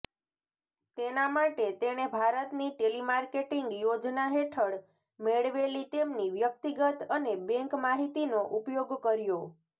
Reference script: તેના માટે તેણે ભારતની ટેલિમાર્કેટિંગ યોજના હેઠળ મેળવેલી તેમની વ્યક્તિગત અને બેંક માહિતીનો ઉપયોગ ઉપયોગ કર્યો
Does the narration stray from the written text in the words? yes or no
yes